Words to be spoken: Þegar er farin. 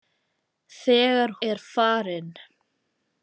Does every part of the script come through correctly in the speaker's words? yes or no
yes